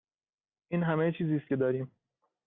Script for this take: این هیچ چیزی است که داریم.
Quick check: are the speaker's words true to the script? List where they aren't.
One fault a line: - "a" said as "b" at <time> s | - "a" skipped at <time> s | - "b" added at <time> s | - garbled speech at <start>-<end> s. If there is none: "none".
- "هیچ" said as "همه" at 0.8 s